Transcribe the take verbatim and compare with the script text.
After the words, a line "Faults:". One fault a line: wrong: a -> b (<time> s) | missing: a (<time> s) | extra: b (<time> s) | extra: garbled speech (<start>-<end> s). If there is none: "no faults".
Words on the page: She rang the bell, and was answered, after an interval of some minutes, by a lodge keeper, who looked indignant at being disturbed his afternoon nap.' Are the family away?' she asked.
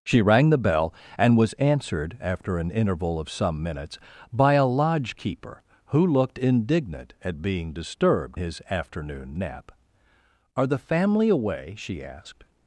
She rang the bell, and was answered, after an interval of some minutes, by a lodge keeper, who looked indignant at being disturbed his afternoon nap.' Are the family away?' she asked.
Faults:
no faults